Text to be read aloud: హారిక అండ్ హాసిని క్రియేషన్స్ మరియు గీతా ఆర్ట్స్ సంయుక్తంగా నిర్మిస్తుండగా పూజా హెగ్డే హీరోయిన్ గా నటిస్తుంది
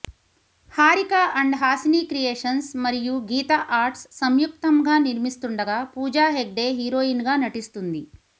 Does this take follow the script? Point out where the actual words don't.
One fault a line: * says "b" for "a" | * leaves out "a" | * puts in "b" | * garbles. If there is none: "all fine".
all fine